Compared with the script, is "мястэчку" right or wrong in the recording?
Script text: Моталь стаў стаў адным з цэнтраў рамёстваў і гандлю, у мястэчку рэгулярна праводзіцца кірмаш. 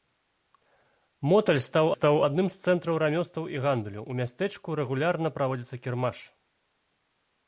right